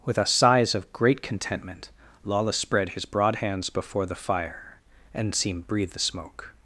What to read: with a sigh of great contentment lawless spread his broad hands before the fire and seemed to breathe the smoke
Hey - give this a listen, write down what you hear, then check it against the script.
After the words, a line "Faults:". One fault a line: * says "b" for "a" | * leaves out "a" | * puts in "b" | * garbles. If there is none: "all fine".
with a sighs of great contentment lawless spread his broad hands before the fire and seemed breathe the smoke
Faults:
* says "sighs" for "sigh"
* leaves out "to"